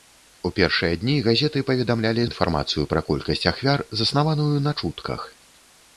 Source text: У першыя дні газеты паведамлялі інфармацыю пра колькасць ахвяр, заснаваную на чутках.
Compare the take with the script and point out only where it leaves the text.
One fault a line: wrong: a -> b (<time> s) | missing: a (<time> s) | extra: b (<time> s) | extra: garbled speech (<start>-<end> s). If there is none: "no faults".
no faults